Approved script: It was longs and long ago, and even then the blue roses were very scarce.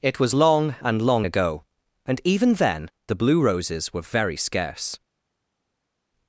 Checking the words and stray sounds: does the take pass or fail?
fail